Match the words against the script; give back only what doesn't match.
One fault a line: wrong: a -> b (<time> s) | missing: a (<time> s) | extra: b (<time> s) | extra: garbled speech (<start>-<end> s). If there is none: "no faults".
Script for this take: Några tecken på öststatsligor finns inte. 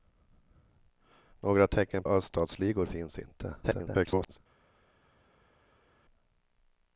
missing: på (2.0 s)
extra: garbled speech (3.6-4.4 s)